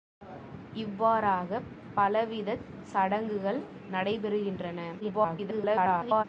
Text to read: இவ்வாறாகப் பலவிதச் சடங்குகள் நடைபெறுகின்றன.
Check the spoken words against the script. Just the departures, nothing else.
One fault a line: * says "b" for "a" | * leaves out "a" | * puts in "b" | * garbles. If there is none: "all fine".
* garbles